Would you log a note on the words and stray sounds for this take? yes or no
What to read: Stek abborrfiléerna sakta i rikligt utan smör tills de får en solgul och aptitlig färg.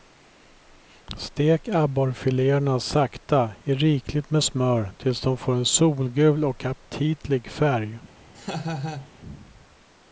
yes